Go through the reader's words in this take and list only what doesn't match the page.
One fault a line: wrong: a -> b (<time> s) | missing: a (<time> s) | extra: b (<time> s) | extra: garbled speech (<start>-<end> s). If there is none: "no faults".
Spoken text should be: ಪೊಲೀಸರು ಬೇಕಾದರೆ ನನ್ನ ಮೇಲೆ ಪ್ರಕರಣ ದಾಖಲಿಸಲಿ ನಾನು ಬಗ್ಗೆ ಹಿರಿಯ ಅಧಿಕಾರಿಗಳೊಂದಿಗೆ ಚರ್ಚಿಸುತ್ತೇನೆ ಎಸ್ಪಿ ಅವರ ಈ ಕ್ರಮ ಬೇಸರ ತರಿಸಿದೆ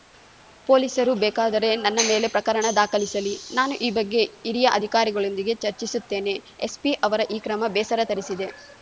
extra: ಈ (3.8 s)